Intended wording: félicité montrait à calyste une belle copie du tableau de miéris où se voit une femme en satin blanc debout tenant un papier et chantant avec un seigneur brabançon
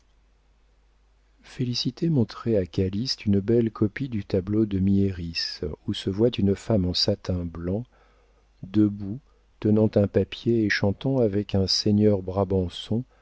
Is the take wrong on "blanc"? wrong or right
right